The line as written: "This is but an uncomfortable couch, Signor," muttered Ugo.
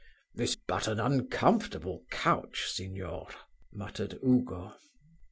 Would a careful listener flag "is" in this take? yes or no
yes